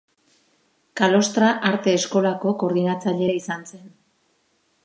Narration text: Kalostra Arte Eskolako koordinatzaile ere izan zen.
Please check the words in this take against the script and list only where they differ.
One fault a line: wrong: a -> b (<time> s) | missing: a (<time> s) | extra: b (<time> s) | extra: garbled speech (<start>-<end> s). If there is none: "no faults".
no faults